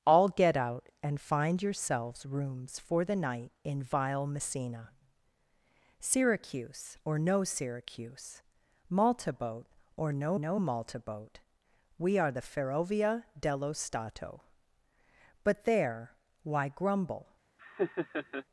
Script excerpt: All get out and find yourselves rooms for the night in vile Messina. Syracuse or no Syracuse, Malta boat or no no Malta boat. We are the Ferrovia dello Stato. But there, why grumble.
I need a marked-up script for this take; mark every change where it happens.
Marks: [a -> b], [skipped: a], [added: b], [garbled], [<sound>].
All get out and find yourselves rooms for the night in vile Messina. Syracuse or no Syracuse, Malta boat or no no Malta boat. We are the Ferrovia dello Stato. But there, why grumble. [laugh]